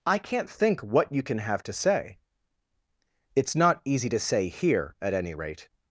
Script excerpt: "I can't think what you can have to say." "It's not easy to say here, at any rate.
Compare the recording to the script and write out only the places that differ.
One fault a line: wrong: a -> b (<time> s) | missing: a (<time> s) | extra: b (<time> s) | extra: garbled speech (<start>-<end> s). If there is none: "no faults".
no faults